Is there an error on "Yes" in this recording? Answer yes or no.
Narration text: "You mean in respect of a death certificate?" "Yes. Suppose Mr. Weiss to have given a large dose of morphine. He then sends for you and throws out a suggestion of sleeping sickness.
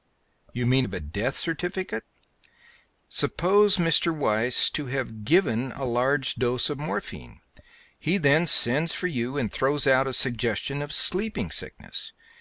yes